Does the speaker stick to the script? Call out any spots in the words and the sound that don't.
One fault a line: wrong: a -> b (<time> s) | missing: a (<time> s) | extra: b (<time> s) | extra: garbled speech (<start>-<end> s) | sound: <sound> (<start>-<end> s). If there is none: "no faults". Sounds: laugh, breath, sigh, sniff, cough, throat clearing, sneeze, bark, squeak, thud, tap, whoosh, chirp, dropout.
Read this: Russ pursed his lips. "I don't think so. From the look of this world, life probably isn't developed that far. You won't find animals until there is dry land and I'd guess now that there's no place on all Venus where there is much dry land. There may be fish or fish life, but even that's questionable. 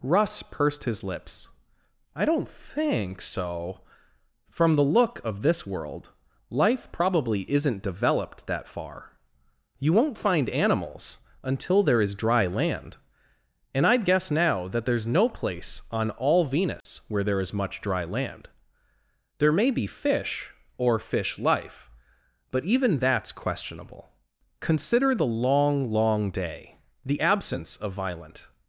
sound: dropout (16.8-16.9 s)
extra: Consider the long long day the absence of violent (24.6 s)